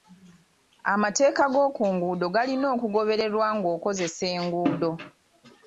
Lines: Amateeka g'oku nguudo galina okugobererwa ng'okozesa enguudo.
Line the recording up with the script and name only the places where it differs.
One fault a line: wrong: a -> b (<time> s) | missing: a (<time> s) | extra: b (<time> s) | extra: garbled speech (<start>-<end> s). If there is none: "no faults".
no faults